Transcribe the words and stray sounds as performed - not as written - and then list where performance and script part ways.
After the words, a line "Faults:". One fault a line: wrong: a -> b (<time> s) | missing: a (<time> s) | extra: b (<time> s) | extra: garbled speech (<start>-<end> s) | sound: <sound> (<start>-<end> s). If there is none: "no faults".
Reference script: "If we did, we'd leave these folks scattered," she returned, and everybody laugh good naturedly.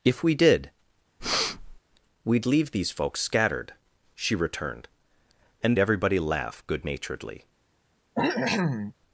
"If we did, we'd leave these folks scattered," she returned, and everybody laugh good naturedly.
Faults:
sound: breath (1.2-1.8 s)
sound: cough (8.1-8.9 s)